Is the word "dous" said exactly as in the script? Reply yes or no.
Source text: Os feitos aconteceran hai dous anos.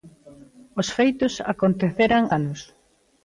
no